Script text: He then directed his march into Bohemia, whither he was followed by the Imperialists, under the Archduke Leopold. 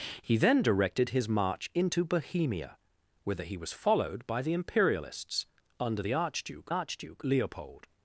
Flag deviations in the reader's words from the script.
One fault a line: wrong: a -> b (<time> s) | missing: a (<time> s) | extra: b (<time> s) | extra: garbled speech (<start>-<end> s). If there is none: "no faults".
extra: Archduke (6.7 s)